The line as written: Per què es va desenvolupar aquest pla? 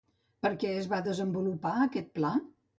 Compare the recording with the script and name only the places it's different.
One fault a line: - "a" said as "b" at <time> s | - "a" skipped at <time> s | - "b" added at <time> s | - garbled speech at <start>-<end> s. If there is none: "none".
none